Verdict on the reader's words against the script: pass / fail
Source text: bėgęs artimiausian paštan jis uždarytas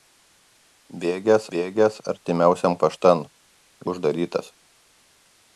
fail